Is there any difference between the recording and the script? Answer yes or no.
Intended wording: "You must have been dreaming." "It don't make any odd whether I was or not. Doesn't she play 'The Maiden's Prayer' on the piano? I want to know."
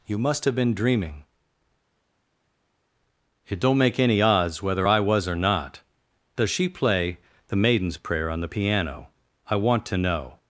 yes